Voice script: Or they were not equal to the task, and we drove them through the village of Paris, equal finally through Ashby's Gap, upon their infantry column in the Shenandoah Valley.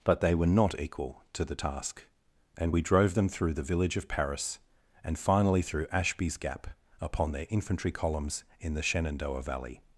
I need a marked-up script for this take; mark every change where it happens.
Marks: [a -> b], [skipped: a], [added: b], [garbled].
[Or -> But] they were not equal to the task, and we drove them through the village of Paris, [equal -> and] finally through Ashby's Gap, upon their infantry [column -> columns] in the Shenandoah Valley.